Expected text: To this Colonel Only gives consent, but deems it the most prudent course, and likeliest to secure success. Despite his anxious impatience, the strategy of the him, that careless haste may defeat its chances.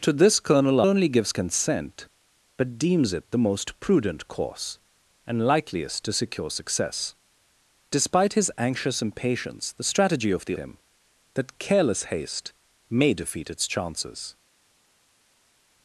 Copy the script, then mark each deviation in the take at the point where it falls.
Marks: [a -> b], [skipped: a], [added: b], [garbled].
To this Colonel Only gives consent, but deems it the most prudent course, and likeliest to secure success. Despite his anxious impatience, the strategy of the him, that careless haste may defeat its chances.